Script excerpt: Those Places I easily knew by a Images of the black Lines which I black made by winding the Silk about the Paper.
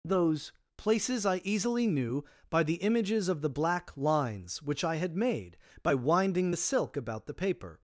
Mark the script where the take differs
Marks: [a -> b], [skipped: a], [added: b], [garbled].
Those Places I easily knew by [a -> the] Images of the black Lines which I [black -> had] made by winding the Silk about the Paper.